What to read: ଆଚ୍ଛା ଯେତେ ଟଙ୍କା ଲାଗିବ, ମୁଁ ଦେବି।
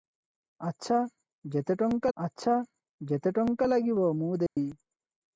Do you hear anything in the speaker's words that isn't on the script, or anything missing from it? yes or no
yes